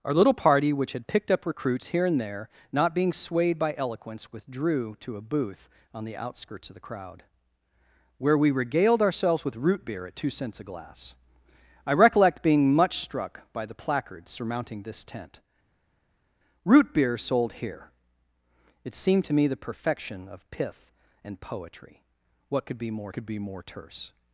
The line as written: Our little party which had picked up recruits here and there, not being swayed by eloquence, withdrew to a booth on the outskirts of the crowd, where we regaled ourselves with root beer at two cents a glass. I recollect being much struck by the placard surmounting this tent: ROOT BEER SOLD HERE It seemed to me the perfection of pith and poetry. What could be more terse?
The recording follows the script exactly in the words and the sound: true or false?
false